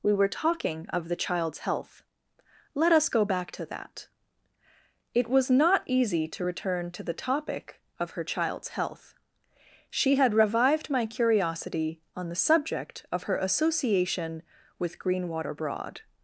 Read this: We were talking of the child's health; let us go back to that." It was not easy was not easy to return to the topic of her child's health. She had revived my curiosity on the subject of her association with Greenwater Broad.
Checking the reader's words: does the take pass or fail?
fail